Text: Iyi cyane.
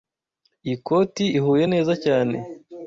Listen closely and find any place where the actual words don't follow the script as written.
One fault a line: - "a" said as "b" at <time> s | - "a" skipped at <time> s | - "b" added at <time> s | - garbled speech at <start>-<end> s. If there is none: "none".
- "koti ihuye neza" added at 0.9 s